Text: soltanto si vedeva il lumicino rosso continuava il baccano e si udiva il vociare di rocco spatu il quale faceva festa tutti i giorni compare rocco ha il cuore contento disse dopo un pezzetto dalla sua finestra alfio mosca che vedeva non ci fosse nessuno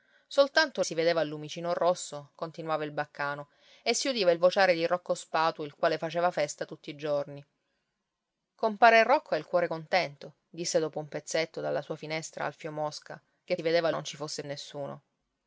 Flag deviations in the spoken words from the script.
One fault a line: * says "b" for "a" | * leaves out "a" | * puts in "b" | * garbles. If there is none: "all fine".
all fine